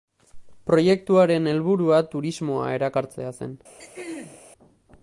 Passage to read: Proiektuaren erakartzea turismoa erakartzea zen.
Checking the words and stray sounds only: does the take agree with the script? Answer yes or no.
no